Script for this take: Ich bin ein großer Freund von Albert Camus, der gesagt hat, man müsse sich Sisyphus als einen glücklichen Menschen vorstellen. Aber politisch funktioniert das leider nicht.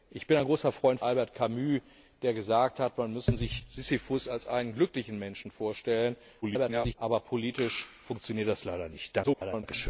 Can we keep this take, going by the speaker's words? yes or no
no